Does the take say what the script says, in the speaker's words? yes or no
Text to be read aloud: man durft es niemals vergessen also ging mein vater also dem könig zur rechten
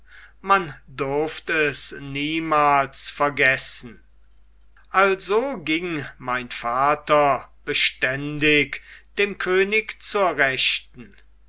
no